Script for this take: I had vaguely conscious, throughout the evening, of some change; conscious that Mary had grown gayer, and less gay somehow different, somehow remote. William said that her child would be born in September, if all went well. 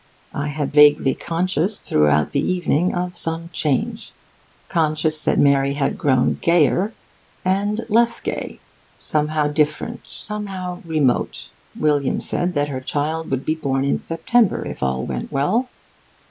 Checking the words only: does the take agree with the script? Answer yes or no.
yes